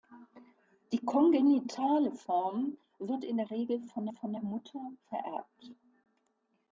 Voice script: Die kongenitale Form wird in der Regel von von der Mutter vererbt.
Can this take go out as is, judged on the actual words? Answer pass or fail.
pass